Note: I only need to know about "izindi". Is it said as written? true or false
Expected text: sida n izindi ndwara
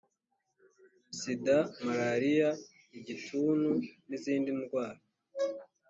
true